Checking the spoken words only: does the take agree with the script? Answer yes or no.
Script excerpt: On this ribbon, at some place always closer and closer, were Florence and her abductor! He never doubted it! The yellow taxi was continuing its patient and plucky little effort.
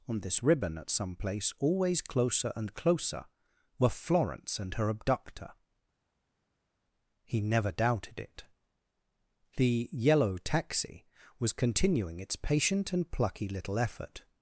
yes